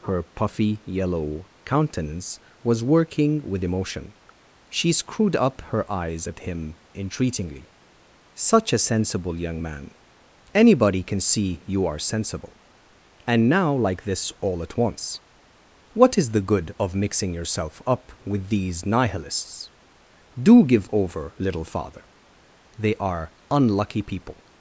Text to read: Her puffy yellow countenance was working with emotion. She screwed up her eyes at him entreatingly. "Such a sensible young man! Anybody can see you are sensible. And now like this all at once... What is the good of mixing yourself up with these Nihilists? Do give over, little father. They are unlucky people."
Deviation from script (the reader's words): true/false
false